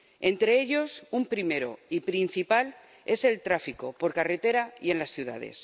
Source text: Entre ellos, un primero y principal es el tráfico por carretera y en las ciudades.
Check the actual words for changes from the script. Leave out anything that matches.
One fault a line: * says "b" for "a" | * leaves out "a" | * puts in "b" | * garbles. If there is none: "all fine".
all fine